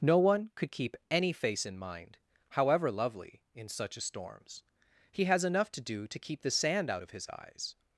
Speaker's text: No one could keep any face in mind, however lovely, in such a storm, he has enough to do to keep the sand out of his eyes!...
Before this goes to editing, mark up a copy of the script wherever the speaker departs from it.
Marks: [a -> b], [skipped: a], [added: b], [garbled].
No one could keep any face in mind, however lovely, in such a [storm, -> storms] he has enough to do to keep the sand out of his eyes!...